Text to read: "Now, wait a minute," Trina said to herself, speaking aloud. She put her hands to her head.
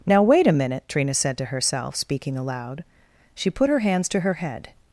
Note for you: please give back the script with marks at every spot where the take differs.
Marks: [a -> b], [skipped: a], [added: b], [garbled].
"Now, wait a minute," Trina said to herself, speaking aloud. She put her hands to her head.